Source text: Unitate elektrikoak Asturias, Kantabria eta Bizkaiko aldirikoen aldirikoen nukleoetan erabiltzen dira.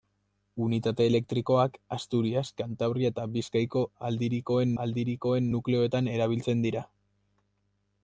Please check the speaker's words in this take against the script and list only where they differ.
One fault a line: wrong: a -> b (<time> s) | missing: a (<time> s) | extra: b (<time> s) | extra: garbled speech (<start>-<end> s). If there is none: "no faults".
no faults